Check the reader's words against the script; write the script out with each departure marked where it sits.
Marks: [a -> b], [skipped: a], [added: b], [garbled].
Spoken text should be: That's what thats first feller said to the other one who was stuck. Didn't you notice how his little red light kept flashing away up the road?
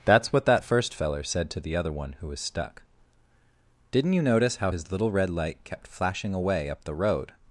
That's what [thats -> that] first feller said to the other one who was stuck. Didn't you notice how his little red light kept flashing away up the road?